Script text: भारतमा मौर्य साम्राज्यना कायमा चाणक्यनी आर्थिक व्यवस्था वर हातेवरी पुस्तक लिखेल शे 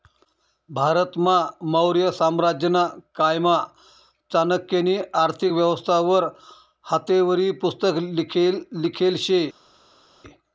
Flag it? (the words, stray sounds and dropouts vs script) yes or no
no